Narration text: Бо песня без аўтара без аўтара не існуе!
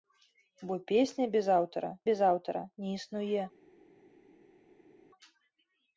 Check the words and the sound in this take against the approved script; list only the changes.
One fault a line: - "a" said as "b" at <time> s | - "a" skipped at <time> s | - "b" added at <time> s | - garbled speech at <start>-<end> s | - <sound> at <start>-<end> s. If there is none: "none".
none